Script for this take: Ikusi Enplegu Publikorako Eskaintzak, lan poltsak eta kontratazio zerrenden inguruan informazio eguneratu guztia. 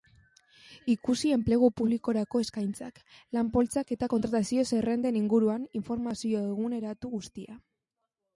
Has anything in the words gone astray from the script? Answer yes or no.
no